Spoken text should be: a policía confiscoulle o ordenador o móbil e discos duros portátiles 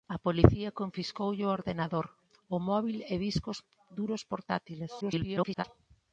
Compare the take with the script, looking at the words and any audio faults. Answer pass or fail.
fail